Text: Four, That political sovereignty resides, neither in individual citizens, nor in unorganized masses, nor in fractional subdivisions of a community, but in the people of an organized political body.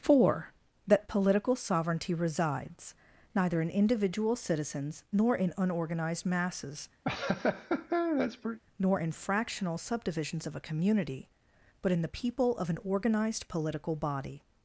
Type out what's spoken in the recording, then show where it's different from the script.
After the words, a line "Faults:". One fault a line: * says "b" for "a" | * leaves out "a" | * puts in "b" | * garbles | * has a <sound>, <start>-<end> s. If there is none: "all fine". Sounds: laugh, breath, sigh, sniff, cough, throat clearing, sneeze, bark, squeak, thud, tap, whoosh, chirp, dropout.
Four, That political sovereignty resides, neither in individual citizens, nor in unorganized masses, nor in fractional subdivisions of a community, but in the people of an organized political body.
Faults:
* has a laugh, 7.0-8.6 s